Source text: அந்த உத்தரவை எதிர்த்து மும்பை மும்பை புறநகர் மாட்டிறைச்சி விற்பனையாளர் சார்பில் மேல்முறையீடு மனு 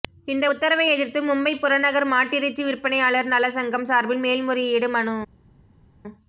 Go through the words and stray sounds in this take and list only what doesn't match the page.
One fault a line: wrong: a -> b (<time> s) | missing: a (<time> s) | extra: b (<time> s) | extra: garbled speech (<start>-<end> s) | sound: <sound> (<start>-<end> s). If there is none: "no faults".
wrong: அந்த -> இந்த (0.3 s)
missing: மும்பை (1.5 s)
extra: நல சங்கம் (3.3 s)